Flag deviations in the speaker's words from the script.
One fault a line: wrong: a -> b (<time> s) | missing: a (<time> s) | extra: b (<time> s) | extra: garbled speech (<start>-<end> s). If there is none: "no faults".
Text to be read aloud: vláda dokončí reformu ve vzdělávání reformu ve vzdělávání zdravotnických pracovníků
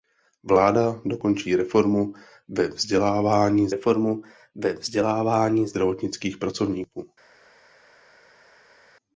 no faults